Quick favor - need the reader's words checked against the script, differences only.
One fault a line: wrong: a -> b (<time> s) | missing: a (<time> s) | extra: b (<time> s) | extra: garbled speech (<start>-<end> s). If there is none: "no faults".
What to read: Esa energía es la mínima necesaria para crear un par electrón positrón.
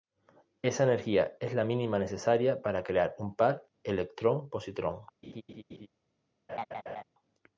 no faults